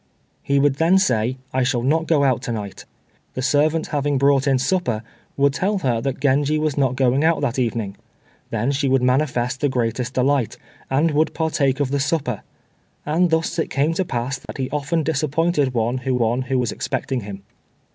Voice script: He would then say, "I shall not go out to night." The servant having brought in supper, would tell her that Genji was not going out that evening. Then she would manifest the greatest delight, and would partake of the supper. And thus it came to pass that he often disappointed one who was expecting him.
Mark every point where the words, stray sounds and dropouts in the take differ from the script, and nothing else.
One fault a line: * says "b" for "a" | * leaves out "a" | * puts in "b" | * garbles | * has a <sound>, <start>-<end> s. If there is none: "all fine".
* has a dropout, 14.5-14.5 s
* puts in "one who"